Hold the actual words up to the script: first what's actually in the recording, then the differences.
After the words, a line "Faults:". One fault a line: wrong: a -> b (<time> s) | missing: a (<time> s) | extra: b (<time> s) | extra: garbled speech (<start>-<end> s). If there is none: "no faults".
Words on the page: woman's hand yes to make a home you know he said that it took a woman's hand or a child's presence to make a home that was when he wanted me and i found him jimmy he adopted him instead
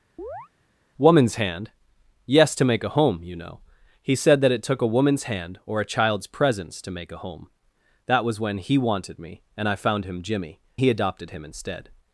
woman's hand yes to make a home you know he said that it took a woman's hand or a child's presence to make a home that was when he wanted me and i found him jimmy he adopted him instead
Faults:
no faults